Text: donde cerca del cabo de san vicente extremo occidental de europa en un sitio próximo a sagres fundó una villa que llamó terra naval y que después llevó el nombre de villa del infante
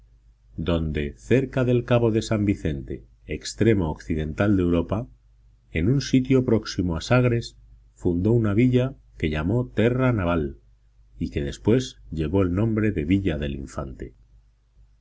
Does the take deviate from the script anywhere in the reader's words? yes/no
no